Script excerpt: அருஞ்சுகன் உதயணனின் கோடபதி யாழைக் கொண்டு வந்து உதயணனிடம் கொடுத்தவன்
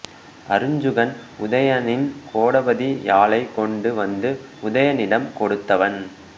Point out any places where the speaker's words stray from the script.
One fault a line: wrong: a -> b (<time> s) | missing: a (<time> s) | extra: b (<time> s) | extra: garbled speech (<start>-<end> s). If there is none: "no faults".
no faults